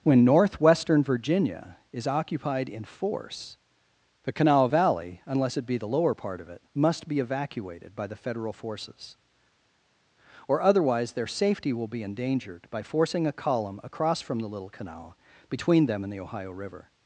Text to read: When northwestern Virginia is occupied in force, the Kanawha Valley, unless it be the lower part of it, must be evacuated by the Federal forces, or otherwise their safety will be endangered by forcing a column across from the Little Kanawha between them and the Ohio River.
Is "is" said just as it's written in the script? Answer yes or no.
yes